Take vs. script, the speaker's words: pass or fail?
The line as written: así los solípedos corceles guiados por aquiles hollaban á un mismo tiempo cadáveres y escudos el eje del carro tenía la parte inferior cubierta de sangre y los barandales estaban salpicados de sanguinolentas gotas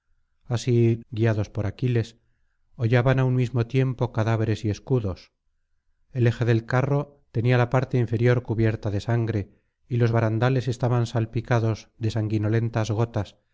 fail